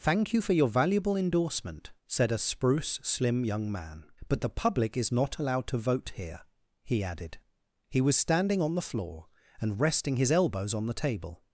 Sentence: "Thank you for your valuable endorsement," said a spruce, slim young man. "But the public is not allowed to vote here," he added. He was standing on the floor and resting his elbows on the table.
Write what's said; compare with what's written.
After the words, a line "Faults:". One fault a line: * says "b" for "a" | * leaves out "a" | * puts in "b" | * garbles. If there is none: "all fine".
"Thank you for your valuable endorsement," said a spruce, slim young man. "But the public is not allowed to vote here," he added. He was standing on the floor and resting his elbows on the table.
Faults:
all fine